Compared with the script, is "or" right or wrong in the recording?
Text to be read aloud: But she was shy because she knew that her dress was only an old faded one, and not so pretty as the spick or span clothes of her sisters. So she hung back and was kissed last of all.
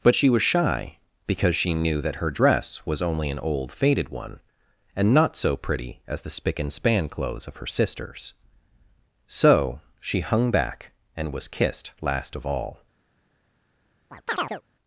wrong